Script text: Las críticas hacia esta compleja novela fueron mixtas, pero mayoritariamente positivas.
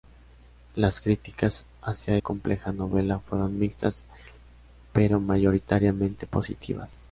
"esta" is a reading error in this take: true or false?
true